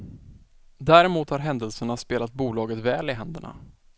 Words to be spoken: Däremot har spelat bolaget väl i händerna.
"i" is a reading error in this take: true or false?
false